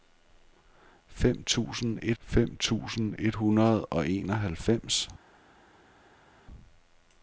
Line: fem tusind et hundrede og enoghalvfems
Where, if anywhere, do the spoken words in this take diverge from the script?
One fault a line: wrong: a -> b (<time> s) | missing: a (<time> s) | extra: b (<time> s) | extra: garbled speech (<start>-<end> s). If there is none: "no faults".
extra: fem tusind et (2.2 s)